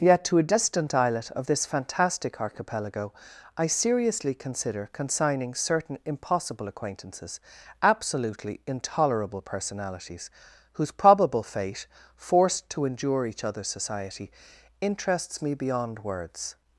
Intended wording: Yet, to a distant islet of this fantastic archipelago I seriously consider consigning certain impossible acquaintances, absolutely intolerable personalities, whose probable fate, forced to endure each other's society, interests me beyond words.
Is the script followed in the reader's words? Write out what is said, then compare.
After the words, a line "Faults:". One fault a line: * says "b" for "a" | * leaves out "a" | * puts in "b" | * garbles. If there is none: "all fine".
Yet, to a distant islet of this fantastic archipelago I seriously consider consigning certain impossible acquaintances, absolutely intolerable personalities, whose probable fate, forced to endure each other's society, interests me beyond words.
Faults:
all fine